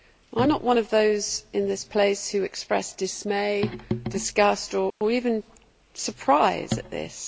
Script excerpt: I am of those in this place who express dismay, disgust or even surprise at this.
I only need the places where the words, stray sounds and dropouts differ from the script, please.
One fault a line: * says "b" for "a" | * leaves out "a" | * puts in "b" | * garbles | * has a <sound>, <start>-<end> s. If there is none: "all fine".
* puts in "not one"
* has a dropout, 4.9-5.0 s